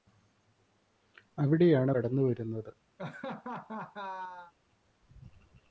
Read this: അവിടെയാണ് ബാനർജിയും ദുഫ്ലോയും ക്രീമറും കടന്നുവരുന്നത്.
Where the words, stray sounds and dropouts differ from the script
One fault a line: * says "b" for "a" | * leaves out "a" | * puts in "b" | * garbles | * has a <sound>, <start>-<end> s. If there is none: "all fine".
* leaves out "ബാനർജിയും ദുഫ്ലോയും ക്രീമറും"
* has a laugh, 3.0-4.5 s